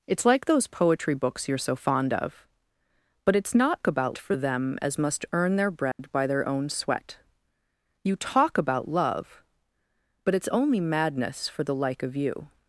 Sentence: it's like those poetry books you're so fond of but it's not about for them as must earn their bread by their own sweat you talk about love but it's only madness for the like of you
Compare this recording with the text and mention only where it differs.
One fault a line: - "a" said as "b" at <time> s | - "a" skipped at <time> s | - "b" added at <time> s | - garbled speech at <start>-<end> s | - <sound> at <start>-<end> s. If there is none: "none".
- dropout at 5.9-6.0 s